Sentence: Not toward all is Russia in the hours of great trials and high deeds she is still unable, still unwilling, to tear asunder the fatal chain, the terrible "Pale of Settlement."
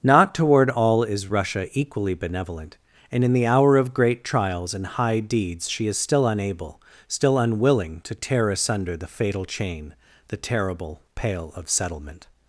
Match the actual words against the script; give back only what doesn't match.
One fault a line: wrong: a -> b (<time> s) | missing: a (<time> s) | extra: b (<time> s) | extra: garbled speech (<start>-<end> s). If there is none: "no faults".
extra: equally benevolent and (1.8 s)
wrong: hours -> hour (3.5 s)